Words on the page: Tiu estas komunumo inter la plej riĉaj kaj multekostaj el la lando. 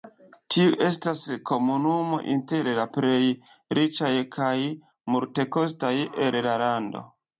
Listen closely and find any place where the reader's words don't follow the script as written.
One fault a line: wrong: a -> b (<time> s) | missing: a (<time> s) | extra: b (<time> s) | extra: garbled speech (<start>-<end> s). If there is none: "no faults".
no faults